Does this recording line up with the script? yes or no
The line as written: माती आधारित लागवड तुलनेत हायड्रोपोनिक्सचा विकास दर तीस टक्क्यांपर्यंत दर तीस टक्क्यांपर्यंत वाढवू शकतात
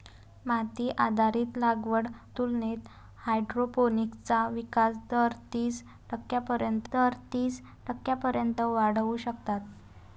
yes